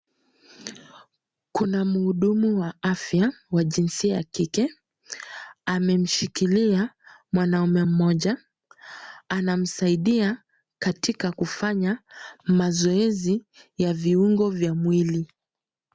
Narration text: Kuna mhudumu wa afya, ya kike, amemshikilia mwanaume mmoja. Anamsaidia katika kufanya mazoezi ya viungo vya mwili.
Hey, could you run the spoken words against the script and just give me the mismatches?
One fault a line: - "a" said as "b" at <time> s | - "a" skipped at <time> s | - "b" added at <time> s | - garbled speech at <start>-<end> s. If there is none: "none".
- "wa jinsia" added at 3.5 s